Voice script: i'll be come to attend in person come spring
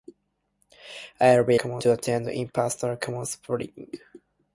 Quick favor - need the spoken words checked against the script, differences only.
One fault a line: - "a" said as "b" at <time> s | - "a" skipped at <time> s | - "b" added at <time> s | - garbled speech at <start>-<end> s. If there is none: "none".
none